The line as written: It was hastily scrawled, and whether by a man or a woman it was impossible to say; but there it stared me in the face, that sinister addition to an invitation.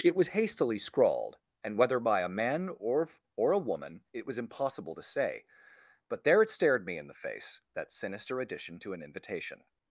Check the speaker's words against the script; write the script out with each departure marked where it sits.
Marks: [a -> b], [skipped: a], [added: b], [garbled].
It was hastily scrawled, and whether by a man or [added: or] a woman it was impossible to say; but there it stared me in the face, that sinister addition to an invitation.